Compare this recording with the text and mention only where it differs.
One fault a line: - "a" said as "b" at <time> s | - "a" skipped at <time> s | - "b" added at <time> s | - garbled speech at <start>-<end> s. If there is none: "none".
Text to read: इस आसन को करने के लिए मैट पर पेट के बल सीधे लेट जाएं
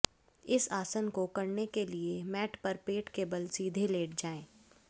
none